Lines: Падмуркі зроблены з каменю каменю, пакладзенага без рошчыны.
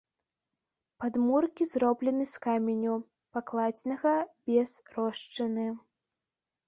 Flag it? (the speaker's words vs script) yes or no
yes